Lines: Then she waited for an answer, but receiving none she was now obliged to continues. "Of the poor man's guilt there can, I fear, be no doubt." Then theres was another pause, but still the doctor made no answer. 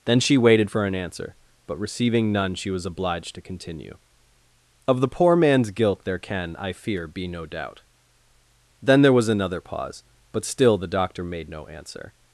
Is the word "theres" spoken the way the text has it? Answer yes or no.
no